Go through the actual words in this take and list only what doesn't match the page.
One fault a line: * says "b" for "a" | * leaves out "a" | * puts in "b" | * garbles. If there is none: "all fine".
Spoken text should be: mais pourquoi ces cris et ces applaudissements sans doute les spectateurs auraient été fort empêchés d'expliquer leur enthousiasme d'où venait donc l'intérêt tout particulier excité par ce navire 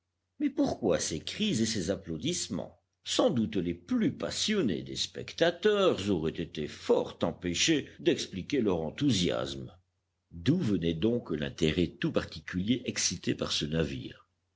* puts in "plus passionnés des"